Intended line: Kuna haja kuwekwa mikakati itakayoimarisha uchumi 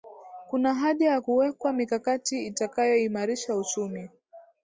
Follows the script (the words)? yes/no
no